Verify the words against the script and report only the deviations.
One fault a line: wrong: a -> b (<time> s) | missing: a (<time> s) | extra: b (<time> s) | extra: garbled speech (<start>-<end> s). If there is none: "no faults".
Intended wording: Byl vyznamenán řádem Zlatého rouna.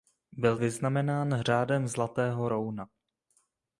no faults